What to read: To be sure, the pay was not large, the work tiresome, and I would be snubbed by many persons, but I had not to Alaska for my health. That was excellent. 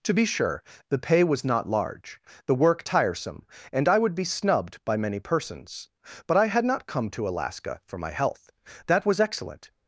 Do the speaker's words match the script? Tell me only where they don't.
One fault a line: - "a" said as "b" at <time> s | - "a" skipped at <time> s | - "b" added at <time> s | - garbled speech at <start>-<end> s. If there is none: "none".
- "come" added at 6.9 s